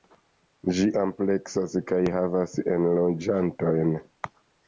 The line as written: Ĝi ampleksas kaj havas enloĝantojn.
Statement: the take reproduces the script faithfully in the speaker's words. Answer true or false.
true